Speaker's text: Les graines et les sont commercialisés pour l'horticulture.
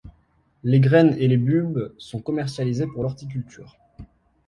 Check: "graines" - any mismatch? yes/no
no